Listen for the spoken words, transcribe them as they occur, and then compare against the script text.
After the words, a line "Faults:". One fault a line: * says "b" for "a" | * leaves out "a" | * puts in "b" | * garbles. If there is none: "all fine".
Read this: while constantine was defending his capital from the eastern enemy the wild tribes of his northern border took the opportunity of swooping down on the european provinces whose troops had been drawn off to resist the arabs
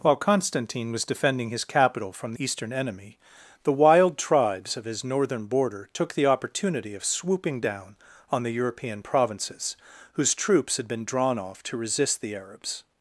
while constantine was defending his capital from eastern enemy the wild tribes of his northern border took the opportunity of swooping down on the european provinces whose troops had been drawn off to resist the arabs
Faults:
* leaves out "the"